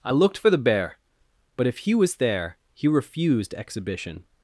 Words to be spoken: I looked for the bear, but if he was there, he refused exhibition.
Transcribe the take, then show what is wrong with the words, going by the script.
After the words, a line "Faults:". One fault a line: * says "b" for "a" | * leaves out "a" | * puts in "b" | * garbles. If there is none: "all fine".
I looked for the bear, but if he was there, he refused exhibition.
Faults:
all fine